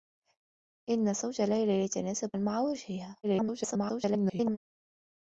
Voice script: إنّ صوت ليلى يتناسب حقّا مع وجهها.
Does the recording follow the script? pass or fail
fail